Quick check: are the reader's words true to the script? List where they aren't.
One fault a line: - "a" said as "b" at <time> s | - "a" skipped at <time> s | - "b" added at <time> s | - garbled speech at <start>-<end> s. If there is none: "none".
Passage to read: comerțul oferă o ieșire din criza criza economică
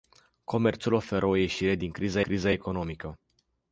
none